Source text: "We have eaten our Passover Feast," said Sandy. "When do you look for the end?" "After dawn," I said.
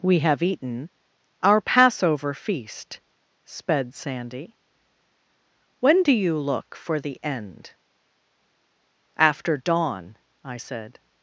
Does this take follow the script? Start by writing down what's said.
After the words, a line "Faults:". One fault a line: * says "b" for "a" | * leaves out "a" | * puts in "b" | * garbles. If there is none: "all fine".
"We have eaten our Passover Feast," sped Sandy. "When do you look for the end?" "After dawn," I said.
Faults:
* says "sped" for "said"